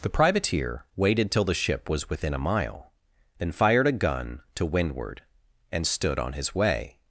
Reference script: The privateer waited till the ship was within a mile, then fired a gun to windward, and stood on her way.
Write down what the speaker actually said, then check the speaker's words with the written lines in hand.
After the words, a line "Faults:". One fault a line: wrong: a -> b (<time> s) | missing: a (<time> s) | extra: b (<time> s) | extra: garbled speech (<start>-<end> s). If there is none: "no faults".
The privateer waited till the ship was within a mile, then fired a gun to windward, and stood on his way.
Faults:
wrong: her -> his (6.3 s)